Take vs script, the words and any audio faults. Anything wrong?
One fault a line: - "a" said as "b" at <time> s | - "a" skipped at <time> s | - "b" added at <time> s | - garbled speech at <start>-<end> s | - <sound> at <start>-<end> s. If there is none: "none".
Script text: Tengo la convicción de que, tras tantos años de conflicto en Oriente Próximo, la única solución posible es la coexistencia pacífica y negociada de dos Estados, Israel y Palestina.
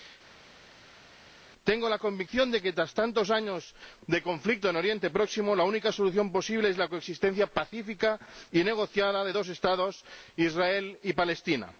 none